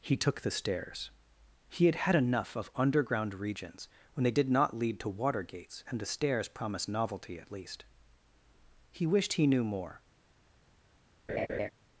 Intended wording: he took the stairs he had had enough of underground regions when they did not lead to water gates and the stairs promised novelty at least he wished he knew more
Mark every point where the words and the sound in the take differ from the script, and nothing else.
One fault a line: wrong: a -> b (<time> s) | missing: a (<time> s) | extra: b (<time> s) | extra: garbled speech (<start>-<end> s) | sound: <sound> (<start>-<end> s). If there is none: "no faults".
sound: laugh (11.3-11.7 s)